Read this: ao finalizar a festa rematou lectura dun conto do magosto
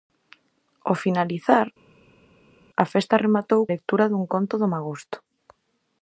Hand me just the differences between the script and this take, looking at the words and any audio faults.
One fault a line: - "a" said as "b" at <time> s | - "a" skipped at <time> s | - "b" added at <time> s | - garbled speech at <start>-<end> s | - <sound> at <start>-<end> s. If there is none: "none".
none